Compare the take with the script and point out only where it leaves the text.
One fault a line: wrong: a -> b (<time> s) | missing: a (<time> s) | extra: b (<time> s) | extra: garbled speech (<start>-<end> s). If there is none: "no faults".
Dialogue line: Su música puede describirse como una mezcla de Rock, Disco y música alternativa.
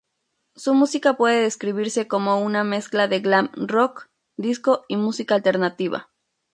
extra: Glam (3.2 s)